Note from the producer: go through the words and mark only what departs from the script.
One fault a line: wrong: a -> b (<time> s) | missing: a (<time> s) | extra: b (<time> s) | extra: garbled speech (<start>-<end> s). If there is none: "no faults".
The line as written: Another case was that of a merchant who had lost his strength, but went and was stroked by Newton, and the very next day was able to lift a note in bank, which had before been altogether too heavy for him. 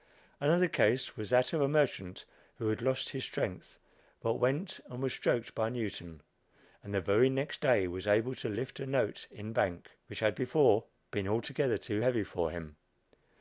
no faults